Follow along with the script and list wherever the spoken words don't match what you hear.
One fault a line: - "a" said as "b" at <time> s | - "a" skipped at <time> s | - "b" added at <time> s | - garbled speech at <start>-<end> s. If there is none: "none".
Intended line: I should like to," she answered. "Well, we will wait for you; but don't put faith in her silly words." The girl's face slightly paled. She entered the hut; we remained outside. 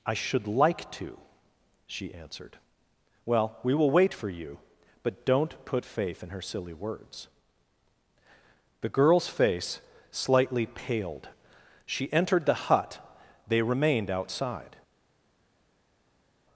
- "we" said as "they" at 13.5 s